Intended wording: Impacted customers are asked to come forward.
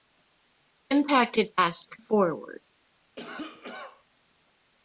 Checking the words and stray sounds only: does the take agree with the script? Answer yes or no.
no